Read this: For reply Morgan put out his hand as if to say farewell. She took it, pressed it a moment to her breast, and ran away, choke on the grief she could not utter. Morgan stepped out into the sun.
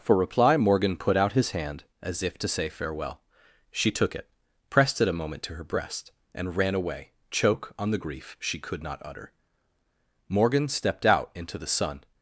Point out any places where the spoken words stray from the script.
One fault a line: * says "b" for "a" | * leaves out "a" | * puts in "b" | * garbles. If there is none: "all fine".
all fine